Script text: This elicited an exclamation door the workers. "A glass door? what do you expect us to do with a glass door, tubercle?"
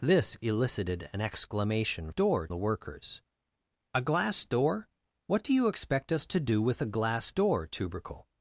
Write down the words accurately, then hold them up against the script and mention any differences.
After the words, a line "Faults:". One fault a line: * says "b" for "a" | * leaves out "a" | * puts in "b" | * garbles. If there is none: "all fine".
This elicited an exclamation door the workers. "A glass door? what do you expect us to do with a glass door, tubercle?"
Faults:
all fine